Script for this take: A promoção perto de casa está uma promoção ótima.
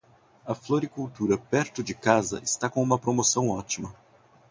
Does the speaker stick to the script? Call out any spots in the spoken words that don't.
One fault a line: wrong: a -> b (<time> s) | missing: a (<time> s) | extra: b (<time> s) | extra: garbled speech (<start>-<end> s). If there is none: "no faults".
wrong: promoção -> floricultura (0.6 s)
extra: com (2.7 s)